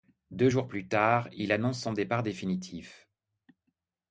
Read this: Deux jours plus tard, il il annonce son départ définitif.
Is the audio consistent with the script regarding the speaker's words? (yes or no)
no